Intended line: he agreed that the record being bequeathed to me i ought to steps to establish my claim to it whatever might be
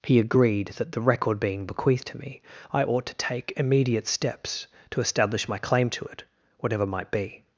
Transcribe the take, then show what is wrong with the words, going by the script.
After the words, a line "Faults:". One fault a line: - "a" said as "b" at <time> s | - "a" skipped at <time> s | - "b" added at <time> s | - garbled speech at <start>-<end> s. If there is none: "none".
he agreed that the record being bequeathed to me i ought to take immediate steps to establish my claim to it whatever might be
Faults:
- "take immediate" added at 3.1 s